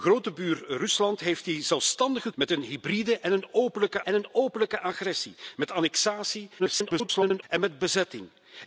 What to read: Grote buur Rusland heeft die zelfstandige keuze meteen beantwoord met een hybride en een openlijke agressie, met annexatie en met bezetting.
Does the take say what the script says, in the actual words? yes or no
no